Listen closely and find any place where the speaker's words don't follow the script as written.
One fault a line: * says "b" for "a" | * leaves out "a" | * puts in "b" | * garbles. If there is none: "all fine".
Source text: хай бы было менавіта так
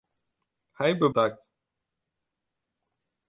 * leaves out "было менавіта"